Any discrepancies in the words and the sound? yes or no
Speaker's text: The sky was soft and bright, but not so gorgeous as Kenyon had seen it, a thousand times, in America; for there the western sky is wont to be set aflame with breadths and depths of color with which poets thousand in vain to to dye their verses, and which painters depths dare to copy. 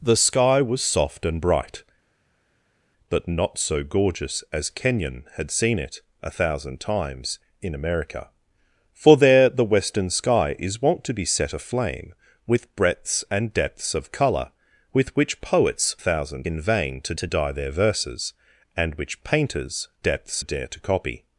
no